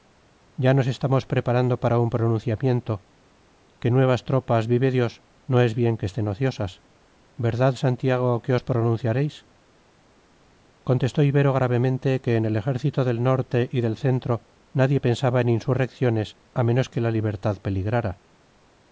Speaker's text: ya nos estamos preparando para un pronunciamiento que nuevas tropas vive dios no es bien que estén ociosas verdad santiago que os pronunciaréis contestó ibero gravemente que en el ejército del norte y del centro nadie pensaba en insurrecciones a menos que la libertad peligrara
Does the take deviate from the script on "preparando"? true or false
false